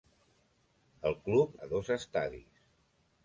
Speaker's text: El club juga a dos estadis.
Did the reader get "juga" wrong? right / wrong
wrong